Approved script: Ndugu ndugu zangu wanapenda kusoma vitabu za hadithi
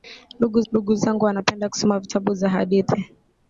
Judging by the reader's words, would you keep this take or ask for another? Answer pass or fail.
pass